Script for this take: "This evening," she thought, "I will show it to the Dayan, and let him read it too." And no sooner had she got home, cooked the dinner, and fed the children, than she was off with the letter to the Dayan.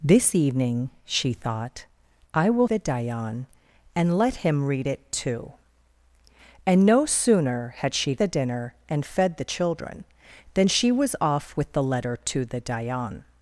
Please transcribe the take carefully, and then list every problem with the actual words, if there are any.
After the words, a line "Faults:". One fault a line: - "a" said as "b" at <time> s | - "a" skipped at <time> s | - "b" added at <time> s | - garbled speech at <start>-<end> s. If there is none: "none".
"This evening," she thought, "I will the Dayan, and let him read it too." And no sooner had she the dinner, and fed the children, than she was off with the letter to the Dayan.
Faults:
- "show it to" skipped at 2.7 s
- "got home cooked" skipped at 8.1 s